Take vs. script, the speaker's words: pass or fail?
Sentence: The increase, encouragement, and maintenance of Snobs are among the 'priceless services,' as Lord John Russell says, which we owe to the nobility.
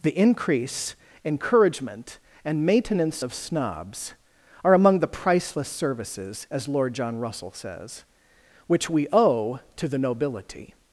pass